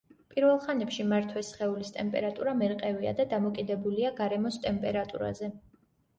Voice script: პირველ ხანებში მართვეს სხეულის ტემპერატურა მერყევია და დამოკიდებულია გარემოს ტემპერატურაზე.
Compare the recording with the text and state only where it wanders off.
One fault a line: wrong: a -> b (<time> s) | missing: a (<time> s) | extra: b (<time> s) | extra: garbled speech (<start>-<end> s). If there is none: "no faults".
no faults